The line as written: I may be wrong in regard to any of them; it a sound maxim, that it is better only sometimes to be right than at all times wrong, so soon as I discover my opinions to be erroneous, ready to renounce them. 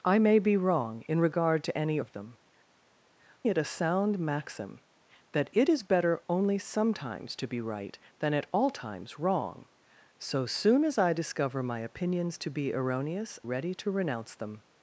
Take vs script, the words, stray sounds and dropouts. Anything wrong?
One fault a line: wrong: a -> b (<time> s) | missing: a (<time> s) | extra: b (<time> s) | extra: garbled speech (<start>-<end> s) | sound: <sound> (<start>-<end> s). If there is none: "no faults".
no faults